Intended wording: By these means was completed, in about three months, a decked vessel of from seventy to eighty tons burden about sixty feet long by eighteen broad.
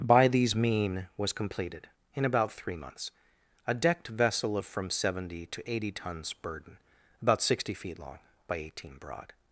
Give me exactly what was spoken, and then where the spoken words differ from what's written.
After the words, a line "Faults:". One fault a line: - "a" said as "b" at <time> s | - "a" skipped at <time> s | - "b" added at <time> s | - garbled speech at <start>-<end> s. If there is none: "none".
By these mean was completed, in about three months, a decked vessel of from seventy to eighty tons burden about sixty feet long by eighteen broad.
Faults:
- "means" said as "mean" at 0.6 s